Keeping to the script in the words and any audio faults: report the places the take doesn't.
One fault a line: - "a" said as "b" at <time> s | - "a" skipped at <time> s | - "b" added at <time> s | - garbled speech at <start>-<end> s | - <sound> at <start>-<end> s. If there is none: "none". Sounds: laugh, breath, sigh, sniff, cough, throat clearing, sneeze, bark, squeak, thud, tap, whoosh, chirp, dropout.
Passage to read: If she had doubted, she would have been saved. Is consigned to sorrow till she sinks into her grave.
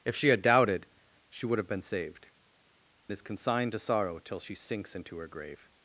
none